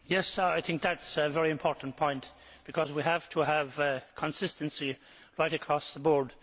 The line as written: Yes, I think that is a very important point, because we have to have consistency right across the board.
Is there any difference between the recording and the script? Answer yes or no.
no